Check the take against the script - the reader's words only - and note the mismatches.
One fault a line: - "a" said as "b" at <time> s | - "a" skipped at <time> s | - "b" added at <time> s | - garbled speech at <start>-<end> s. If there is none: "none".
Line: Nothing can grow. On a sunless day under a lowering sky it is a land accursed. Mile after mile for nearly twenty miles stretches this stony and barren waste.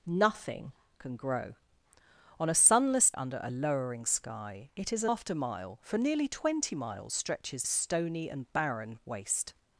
- "day" skipped at 3.1 s
- "land accursed Mile" skipped at 5.1 s
- "this" skipped at 7.6 s